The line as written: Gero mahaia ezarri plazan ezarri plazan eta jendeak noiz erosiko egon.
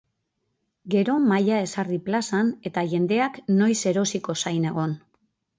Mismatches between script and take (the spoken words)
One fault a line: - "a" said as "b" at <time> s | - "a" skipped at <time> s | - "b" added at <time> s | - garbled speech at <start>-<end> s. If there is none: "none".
- "ezarri plazan" skipped at 2.5 s
- "zain" added at 4.5 s